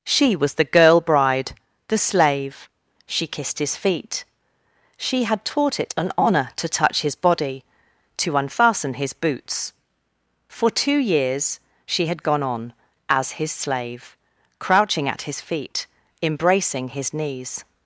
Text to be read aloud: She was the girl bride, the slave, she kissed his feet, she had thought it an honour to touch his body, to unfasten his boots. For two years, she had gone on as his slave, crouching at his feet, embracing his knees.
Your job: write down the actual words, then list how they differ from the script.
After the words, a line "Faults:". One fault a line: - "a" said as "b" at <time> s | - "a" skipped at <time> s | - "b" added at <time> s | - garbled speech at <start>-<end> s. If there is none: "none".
She was the girl bride, the slave, she kissed his feet, she had taught it an honour to touch his body, to unfasten his boots. For two years, she had gone on as his slave, crouching at his feet, embracing his knees.
Faults:
- "thought" said as "taught" at 5.4 s